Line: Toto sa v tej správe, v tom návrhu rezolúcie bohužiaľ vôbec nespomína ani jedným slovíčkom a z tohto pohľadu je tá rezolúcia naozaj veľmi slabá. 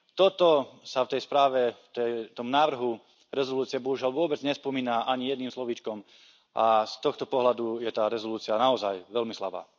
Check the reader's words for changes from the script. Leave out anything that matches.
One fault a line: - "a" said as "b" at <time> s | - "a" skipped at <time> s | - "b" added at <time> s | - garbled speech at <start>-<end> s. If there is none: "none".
none